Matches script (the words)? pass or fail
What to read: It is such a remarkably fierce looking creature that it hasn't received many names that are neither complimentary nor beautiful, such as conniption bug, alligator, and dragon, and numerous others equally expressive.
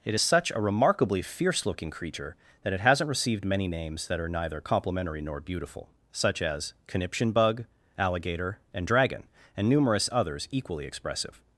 pass